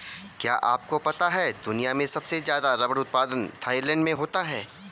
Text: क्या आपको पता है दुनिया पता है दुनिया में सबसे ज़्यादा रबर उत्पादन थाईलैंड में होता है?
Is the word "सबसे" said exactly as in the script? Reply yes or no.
yes